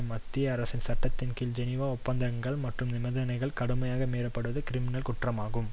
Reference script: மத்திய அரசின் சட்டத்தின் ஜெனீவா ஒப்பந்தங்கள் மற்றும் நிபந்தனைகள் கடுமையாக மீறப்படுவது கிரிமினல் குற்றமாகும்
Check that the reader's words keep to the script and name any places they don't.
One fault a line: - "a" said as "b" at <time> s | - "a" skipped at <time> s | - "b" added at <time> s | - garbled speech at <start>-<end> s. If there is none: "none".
- "கீழ்" added at 1.3 s